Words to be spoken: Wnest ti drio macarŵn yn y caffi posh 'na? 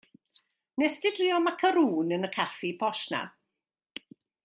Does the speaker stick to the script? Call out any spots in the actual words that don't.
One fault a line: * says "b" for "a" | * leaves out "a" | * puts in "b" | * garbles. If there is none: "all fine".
all fine